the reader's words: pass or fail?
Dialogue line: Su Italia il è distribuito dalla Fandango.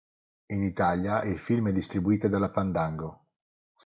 fail